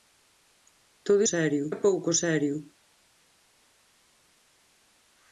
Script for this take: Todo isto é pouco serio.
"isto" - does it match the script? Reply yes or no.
no